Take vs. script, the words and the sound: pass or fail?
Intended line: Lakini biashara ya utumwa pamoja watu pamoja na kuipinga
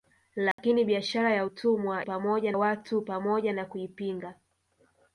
fail